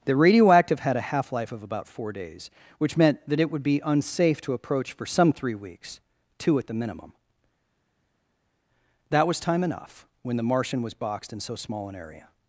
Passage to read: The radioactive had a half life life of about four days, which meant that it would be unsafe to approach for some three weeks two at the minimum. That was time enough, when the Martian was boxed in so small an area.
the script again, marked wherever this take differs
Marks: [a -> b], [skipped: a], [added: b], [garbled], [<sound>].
The radioactive had a half life [skipped: life] of about four days, which meant that it would be unsafe to approach for some three weeks two at the minimum. That was time enough, when the Martian was boxed in so small an area.